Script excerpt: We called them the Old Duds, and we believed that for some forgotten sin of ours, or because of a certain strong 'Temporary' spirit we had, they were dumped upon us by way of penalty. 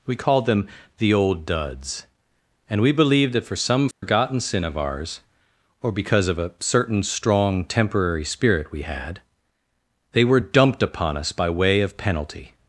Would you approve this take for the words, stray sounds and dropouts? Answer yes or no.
no